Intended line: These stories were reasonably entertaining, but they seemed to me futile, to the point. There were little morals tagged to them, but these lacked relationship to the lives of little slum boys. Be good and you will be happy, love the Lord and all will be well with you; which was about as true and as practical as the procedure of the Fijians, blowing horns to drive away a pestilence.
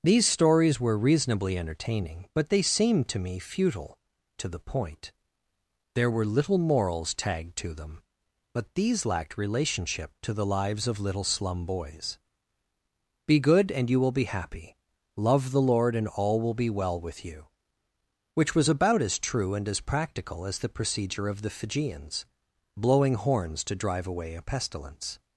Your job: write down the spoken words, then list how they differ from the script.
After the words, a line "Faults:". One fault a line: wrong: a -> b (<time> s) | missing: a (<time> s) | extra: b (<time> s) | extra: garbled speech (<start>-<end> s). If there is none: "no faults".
These stories were reasonably entertaining, but they seemed to me futile, to the point. There were little morals tagged to them, but these lacked relationship to the lives of little slum boys. Be good and you will be happy, love the Lord and all will be well with you; which was about as true and as practical as the procedure of the Fijians, blowing horns to drive away a pestilence.
Faults:
no faults